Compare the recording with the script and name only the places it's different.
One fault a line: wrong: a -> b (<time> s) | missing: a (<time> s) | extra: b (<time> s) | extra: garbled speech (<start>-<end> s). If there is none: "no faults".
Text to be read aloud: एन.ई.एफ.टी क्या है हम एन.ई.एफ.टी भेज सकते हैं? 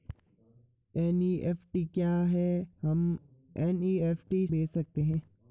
no faults